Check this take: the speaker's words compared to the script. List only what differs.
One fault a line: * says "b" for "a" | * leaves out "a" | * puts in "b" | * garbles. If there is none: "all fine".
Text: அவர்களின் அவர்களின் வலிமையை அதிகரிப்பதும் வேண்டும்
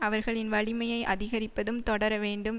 * leaves out "அவர்களின்"
* puts in "தொடர"